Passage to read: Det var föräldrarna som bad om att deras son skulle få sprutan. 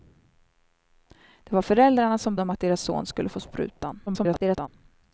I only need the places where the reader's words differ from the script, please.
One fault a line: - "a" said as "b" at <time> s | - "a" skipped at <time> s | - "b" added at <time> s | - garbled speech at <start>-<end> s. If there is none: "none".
- "bad" skipped at 2.4 s
- garbled speech at 4.1-4.7 s